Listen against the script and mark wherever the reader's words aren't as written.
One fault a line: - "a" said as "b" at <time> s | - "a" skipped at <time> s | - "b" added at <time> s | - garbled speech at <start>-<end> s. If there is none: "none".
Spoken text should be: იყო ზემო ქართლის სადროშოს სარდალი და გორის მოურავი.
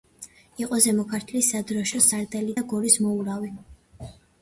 none